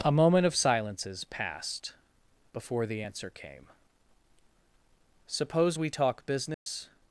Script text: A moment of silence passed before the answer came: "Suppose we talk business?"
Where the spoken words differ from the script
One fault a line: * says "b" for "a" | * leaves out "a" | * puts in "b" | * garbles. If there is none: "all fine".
* says "silences" for "silence"